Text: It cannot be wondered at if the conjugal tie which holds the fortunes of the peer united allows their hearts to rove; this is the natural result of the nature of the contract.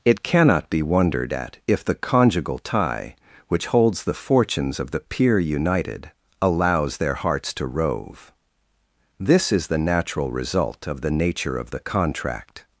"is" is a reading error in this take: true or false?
false